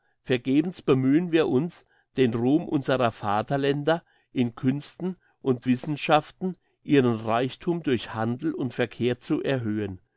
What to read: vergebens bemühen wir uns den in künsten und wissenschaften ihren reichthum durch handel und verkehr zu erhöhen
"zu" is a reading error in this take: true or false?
false